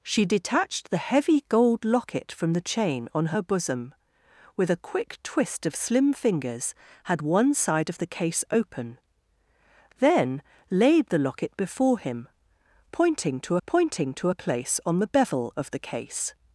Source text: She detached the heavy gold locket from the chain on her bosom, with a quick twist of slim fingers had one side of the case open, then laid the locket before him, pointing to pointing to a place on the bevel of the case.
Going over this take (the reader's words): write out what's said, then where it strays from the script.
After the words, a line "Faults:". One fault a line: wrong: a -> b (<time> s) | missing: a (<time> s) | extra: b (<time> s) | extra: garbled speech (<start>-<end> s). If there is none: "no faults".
She detached the heavy gold locket from the chain on her bosom, with a quick twist of slim fingers had one side of the case open, then laid the locket before him, pointing to pointing to a place on the bevel of the case.
Faults:
no faults